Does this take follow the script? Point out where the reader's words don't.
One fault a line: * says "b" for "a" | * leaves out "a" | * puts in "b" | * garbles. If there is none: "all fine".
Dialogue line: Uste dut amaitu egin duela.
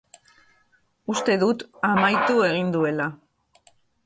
all fine